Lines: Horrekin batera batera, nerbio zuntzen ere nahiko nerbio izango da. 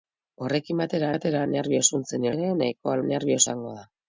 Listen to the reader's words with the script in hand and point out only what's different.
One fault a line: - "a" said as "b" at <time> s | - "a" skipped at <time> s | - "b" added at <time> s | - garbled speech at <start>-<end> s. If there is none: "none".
none